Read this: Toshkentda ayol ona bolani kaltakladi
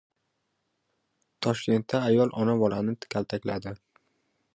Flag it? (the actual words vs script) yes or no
no